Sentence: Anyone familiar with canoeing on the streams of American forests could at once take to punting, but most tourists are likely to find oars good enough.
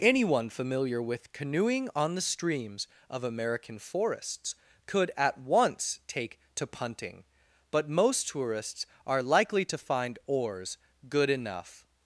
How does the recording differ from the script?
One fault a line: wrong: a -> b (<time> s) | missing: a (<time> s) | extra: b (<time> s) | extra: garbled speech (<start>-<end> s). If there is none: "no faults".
no faults